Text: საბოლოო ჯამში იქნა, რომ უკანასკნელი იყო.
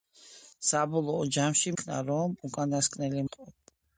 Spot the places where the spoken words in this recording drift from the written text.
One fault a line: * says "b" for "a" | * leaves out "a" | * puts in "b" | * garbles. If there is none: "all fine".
all fine